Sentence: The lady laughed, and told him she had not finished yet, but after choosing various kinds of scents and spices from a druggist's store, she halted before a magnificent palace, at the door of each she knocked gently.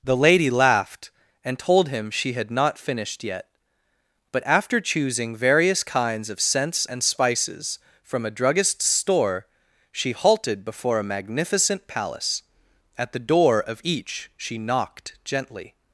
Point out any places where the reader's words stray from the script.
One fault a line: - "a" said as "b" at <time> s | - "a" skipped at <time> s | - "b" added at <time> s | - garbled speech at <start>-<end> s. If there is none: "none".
none